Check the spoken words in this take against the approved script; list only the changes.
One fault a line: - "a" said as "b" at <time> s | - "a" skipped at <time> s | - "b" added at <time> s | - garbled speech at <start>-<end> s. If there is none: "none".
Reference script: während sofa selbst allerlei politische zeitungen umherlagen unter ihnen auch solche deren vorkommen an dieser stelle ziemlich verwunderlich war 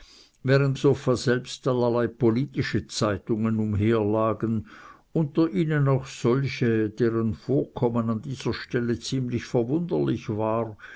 none